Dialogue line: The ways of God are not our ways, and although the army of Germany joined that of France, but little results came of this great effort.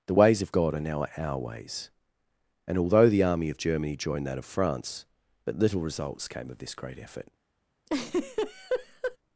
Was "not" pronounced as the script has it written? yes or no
no